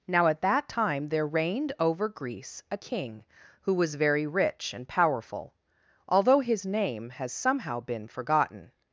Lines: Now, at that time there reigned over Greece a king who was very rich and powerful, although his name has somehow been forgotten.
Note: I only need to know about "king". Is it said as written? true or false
true